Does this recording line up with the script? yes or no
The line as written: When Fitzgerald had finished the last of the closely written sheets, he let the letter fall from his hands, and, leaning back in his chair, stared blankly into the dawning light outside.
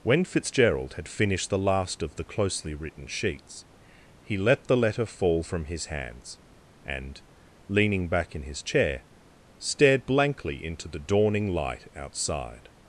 yes